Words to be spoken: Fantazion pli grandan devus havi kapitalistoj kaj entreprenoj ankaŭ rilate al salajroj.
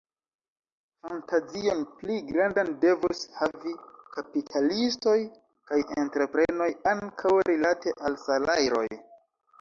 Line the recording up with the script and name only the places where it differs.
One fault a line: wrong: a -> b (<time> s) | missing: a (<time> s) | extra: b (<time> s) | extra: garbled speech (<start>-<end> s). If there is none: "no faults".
no faults